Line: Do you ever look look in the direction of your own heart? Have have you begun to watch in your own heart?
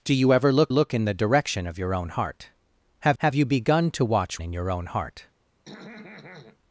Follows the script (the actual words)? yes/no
yes